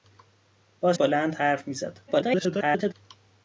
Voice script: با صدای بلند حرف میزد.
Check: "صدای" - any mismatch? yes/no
yes